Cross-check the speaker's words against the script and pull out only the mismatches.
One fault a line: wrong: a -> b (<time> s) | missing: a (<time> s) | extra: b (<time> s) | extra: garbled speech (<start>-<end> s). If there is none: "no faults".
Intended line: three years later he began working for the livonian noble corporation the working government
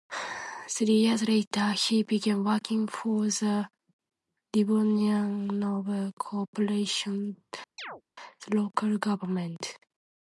wrong: working -> local (8.6 s)